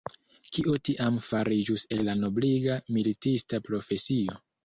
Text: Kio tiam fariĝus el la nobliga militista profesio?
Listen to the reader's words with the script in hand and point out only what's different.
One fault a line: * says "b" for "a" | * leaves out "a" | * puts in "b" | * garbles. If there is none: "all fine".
all fine